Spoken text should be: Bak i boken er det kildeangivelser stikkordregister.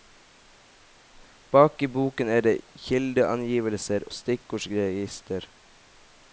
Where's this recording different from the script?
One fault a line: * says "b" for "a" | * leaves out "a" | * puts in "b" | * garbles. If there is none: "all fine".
all fine